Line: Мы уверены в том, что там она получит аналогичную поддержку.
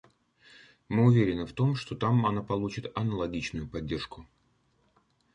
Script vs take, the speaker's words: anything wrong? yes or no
no